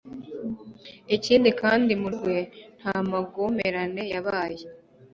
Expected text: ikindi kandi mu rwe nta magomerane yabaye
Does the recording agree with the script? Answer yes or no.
yes